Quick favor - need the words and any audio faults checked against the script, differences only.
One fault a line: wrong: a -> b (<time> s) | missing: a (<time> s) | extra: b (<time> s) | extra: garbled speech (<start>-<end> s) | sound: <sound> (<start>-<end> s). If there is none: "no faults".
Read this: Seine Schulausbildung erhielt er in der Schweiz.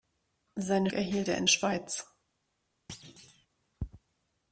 missing: Schulausbildung (0.9 s)
missing: der (1.5 s)
sound: thud (2.9-3.5 s)